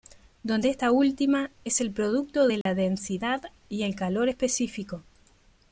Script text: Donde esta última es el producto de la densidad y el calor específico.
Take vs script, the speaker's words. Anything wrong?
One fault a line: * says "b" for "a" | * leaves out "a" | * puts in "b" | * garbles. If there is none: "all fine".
all fine